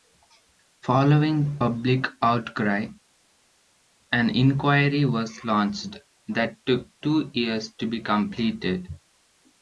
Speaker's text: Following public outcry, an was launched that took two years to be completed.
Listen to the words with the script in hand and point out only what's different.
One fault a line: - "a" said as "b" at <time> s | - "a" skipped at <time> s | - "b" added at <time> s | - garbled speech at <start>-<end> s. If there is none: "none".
- "inquiry" added at 4.4 s